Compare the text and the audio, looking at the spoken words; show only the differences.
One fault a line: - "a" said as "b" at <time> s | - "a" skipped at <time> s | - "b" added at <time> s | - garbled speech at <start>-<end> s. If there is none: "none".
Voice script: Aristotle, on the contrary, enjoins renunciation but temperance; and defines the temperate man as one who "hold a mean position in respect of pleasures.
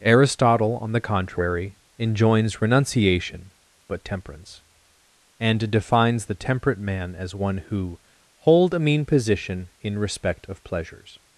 none